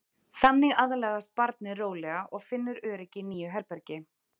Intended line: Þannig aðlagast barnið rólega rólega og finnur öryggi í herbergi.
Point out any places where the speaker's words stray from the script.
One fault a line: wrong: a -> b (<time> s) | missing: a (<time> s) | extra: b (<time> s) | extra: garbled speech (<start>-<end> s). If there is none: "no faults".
missing: rólega (2.2 s)
extra: nýju (3.3 s)